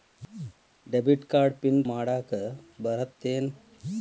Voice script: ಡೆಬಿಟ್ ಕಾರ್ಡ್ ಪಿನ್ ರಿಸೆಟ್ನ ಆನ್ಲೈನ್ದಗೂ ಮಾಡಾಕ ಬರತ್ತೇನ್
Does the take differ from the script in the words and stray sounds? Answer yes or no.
yes